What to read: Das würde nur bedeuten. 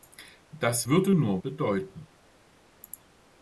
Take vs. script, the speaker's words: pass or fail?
pass